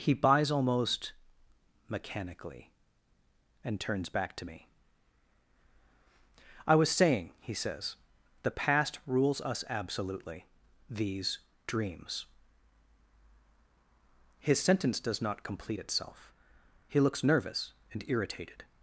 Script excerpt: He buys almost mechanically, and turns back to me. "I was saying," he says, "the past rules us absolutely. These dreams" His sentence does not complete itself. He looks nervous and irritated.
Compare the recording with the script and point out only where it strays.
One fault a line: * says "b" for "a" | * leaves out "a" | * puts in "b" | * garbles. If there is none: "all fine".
all fine